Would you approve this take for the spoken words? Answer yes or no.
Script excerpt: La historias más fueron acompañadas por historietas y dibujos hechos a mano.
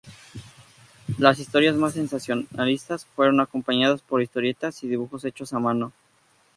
no